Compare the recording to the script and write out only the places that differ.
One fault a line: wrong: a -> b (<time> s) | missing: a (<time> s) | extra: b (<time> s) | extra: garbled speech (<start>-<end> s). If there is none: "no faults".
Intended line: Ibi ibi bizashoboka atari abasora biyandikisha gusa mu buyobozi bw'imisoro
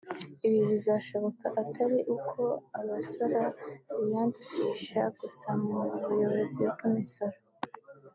missing: ibi (0.6 s)
extra: uko (2.2 s)